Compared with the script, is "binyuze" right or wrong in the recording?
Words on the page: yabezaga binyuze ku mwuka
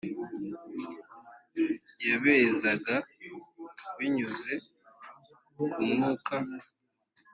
right